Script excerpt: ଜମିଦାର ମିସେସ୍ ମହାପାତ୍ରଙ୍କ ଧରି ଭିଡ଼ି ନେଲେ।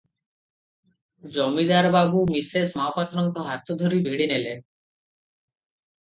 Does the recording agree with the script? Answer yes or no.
no